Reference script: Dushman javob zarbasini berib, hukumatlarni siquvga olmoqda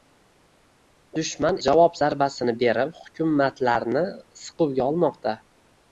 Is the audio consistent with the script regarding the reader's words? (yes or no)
yes